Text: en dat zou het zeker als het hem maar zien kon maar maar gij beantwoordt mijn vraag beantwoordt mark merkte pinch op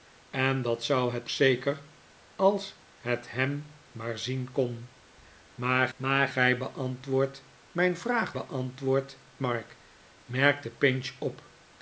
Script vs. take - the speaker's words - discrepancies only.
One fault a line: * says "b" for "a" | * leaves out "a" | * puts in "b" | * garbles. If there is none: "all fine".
all fine